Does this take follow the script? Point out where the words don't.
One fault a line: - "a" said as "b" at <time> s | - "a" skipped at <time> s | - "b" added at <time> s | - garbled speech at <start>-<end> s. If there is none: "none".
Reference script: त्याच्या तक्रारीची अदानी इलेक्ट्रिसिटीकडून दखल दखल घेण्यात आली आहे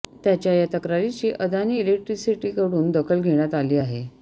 - "या" added at 0.5 s
- "दखल" skipped at 3.2 s